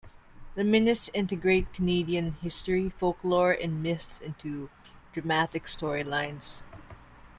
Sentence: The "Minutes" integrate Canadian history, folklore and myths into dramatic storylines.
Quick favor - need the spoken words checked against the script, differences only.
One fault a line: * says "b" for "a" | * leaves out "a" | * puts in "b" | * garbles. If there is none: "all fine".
all fine